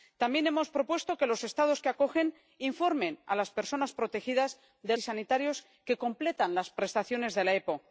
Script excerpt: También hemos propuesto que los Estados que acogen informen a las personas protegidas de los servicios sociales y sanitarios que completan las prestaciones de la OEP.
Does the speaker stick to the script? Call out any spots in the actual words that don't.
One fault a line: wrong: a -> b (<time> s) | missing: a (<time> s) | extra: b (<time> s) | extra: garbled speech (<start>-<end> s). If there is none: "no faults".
missing: los servicios sociales (5.0 s)